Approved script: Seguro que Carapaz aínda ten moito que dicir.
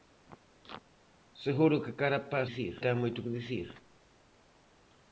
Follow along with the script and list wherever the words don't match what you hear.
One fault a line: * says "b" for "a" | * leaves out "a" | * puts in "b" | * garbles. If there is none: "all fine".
* says "dicir" for "aínda"